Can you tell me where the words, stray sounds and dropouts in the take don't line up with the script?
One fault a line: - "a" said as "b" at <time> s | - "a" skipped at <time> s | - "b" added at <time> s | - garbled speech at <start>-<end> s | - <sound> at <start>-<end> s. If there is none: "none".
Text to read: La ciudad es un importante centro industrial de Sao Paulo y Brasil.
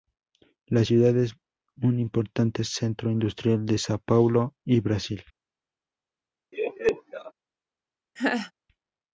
- laugh at 6.5-7.3 s
- laugh at 8.2-8.5 s